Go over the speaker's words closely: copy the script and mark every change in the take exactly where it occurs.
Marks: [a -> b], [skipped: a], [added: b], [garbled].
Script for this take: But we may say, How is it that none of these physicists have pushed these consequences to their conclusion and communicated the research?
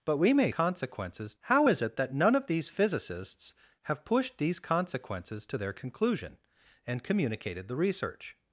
But we may [say, -> consequences] How is it that none of these physicists have pushed these consequences to their conclusion and communicated the research?